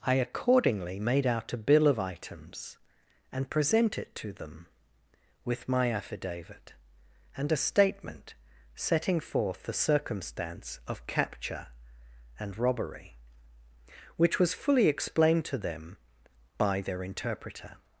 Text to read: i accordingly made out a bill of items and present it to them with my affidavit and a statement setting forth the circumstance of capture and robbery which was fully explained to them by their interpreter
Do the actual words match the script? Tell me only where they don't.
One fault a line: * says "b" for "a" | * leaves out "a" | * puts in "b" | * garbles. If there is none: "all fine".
all fine